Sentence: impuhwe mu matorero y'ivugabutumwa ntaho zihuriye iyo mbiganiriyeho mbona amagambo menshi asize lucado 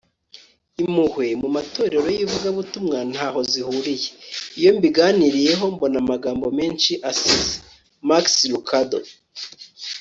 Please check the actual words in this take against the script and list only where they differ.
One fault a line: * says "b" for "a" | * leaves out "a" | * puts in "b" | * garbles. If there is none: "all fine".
* puts in "max"